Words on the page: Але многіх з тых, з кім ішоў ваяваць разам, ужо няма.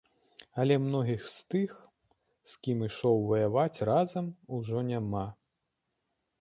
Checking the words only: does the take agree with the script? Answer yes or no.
yes